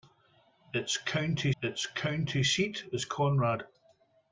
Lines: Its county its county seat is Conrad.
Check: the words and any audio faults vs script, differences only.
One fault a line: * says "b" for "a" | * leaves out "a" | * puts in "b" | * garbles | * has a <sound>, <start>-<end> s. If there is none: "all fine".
all fine